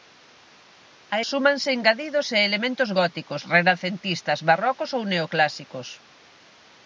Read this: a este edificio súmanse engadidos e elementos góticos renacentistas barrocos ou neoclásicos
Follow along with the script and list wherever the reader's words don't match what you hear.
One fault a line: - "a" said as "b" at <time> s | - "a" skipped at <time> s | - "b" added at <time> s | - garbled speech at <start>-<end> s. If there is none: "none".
- "este edificio" skipped at 1.1 s